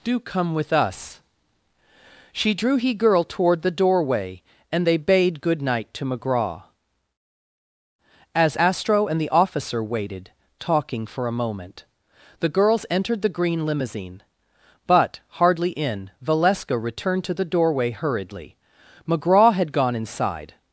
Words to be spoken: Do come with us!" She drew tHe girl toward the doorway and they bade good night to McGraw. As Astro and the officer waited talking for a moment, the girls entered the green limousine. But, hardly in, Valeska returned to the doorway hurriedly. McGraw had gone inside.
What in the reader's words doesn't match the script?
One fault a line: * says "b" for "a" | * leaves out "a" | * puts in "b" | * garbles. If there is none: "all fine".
* says "he" for "tHe"